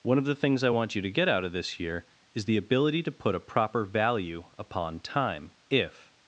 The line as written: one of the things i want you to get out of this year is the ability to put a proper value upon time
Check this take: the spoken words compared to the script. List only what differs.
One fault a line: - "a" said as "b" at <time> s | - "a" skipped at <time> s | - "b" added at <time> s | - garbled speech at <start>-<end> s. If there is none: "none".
- "if" added at 5.7 s